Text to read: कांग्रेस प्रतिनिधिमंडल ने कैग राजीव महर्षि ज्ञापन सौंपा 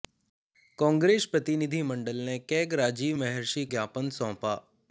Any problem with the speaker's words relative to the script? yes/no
no